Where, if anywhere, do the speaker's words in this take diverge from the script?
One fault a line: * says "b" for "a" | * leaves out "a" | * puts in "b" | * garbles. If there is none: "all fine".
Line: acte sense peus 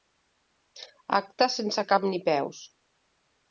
* puts in "cap ni"